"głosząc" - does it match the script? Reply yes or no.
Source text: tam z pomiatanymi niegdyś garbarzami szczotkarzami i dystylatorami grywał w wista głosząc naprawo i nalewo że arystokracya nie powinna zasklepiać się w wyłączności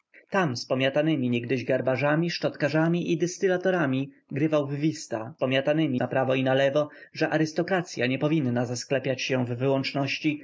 no